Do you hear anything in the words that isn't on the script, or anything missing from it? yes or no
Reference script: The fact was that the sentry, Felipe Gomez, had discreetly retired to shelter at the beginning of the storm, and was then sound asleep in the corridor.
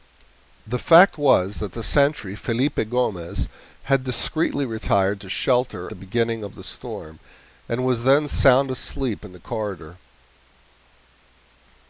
yes